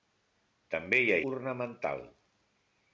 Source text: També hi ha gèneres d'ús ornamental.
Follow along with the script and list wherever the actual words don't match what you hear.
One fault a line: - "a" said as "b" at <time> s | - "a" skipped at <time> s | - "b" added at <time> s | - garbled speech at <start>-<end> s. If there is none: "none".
- "gèneres d'ús" skipped at 1.2 s